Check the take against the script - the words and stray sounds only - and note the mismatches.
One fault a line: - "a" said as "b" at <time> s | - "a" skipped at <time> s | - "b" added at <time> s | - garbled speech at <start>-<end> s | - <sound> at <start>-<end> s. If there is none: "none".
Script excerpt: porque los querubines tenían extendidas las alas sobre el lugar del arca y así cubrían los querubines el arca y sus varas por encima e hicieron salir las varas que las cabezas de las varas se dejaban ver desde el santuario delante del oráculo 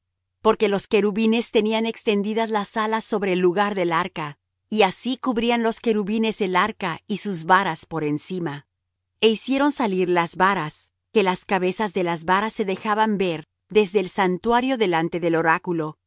none